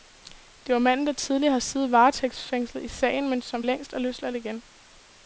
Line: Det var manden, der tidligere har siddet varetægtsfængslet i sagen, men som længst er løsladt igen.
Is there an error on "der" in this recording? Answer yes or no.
no